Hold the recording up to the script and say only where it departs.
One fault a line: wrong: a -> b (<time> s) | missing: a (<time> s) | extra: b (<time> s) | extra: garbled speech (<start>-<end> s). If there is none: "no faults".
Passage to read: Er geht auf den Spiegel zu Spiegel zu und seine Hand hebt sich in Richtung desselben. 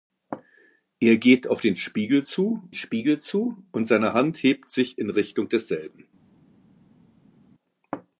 no faults